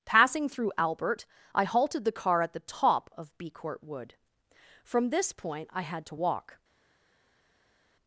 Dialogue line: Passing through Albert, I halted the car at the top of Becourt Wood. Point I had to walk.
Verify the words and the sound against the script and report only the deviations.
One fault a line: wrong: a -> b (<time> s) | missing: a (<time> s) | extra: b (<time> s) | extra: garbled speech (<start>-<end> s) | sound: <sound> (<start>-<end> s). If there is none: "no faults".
extra: From this (4.8 s)